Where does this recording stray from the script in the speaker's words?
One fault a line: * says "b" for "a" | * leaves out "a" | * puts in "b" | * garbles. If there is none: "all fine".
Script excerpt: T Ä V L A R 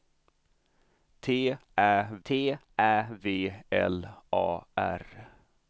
* puts in "t Ä"